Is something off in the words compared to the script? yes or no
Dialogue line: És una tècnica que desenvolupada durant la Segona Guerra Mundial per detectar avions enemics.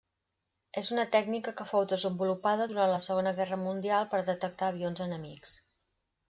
yes